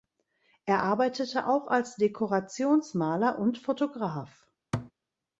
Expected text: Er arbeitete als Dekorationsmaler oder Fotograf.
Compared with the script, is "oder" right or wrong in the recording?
wrong